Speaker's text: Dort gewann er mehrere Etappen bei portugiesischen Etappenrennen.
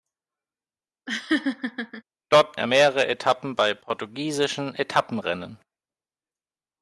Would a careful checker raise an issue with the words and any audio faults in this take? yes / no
yes